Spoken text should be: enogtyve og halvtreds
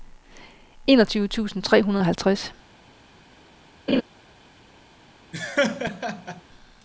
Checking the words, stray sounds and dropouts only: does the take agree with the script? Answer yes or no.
no